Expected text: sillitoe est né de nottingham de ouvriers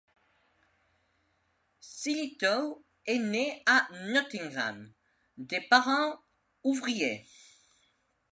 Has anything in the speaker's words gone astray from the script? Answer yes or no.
yes